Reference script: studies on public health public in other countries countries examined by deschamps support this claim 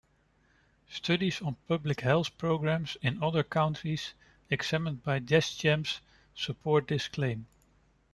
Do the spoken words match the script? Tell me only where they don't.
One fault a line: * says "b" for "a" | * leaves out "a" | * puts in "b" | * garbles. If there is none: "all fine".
* says "programs" for "public"
* leaves out "countries"